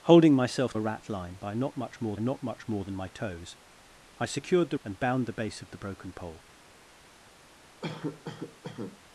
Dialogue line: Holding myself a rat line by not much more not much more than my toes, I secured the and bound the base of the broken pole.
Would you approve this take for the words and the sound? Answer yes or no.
no